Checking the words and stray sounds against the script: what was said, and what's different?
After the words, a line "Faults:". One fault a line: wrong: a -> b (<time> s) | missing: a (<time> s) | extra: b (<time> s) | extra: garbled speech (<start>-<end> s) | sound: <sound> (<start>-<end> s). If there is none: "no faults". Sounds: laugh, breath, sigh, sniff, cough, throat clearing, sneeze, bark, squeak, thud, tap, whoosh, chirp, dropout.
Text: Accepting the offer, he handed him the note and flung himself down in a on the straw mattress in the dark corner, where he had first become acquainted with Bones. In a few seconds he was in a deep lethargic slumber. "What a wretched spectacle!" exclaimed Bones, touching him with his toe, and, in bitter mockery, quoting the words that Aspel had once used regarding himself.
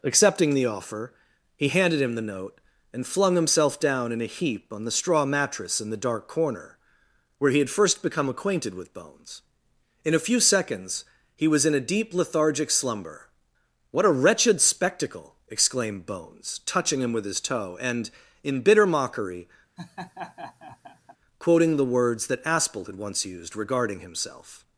Accepting the offer, he handed him the note and flung himself down in a heap on the straw mattress in the dark corner, where he had first become acquainted with Bones. In a few seconds he was in a deep lethargic slumber. "What a wretched spectacle!" exclaimed Bones, touching him with his toe, and, in bitter mockery, quoting the words that Aspel had once used regarding himself.
Faults:
extra: heap (4.3 s)
sound: laugh (19.8-21.2 s)